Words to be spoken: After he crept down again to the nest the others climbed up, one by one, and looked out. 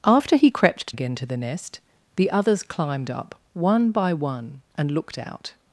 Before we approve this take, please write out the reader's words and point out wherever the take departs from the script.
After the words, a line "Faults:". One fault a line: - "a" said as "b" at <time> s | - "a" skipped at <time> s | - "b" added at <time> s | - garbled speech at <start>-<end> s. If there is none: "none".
After he crept again to the nest the others climbed up, one by one, and looked out.
Faults:
- "down" skipped at 0.9 s